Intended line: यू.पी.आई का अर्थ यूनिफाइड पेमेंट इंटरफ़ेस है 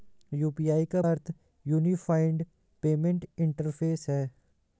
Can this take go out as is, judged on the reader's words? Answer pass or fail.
pass